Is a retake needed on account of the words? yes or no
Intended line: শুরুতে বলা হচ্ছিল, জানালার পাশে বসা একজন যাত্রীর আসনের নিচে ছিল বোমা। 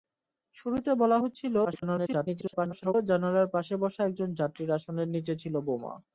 yes